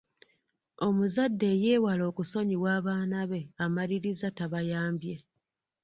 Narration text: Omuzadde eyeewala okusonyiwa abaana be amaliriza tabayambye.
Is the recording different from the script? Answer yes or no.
no